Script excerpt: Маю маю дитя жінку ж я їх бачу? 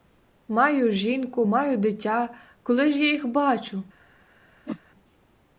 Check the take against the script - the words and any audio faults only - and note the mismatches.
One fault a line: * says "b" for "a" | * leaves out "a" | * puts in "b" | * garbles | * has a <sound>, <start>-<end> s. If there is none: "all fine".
* puts in "жінку"
* says "коли" for "жінку"
* has a whoosh, 4.7-4.8 s